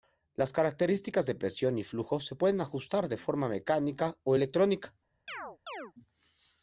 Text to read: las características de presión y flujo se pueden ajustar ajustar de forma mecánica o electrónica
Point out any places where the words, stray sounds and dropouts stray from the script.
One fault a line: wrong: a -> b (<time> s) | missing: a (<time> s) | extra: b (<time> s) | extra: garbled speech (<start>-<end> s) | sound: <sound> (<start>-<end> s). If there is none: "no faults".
missing: ajustar (3.1 s)
sound: chirp (5.3-5.9 s)